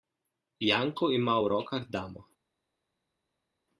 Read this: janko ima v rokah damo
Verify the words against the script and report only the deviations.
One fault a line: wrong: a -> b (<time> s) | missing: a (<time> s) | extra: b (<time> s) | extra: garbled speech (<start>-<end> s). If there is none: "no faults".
no faults